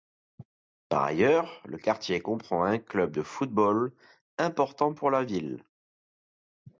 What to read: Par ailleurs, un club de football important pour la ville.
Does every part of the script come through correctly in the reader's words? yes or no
no